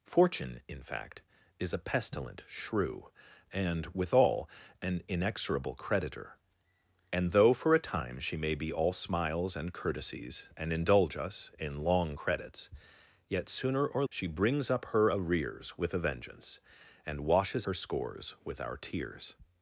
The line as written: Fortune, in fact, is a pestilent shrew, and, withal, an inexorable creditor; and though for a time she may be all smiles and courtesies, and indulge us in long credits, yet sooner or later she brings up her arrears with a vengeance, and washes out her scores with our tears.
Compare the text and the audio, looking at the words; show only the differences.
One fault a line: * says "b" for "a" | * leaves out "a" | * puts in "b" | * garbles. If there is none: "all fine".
* leaves out "later"
* leaves out "out"